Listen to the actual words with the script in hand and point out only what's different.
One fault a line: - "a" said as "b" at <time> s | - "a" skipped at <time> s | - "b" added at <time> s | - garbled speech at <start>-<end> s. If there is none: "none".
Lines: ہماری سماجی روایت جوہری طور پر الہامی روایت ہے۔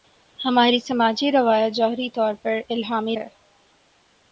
- "روایت" skipped at 3.1 s